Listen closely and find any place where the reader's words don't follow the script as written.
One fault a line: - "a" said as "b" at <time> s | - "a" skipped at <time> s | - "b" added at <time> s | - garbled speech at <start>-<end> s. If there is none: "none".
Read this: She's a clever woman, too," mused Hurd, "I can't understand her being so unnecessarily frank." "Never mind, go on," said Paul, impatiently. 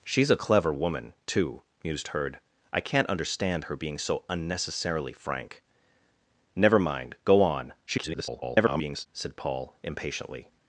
- garbled speech at 7.9-9.1 s